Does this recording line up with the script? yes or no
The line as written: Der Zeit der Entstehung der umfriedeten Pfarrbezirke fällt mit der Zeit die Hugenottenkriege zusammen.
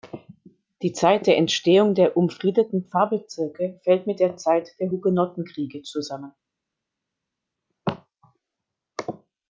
no